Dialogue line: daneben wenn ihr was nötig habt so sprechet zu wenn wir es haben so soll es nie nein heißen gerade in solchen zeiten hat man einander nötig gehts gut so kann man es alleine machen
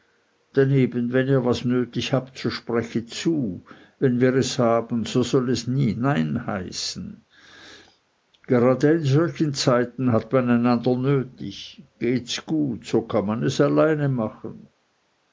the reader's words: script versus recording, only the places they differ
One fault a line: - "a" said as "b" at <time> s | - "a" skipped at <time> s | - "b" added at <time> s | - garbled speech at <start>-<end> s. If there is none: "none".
none